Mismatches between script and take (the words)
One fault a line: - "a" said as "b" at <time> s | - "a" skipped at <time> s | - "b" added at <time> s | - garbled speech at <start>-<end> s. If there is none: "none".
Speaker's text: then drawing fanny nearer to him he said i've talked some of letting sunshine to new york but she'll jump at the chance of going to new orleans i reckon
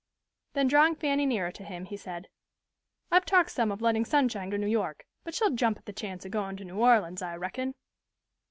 none